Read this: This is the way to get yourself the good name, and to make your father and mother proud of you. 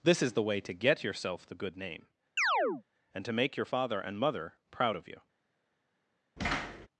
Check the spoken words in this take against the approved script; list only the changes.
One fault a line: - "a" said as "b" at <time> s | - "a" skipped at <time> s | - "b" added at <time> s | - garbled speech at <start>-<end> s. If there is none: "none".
none